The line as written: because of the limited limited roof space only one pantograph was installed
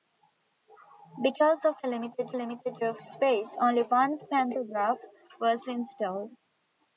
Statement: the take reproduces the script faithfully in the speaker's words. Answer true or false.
true